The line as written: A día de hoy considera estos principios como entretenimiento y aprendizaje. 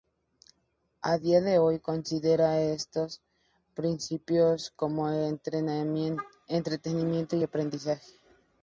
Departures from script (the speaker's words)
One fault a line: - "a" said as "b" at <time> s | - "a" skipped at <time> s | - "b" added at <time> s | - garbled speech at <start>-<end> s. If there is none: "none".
none